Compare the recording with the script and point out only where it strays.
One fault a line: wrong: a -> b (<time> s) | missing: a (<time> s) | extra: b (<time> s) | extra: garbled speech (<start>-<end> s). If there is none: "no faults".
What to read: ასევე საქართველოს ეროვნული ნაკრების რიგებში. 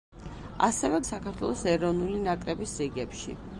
no faults